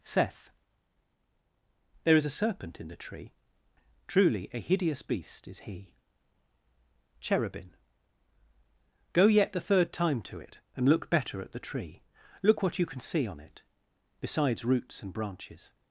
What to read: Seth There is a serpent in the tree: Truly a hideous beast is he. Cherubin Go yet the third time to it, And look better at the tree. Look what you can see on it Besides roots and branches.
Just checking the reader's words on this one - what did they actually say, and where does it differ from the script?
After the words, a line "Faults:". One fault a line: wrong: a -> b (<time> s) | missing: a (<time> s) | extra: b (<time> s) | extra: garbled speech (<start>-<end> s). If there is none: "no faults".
Seth There is a serpent in the tree: Truly a hideous beast is he. Cherubin Go yet the third time to it, And look better at the tree. Look what you can see on it Besides roots and branches.
Faults:
no faults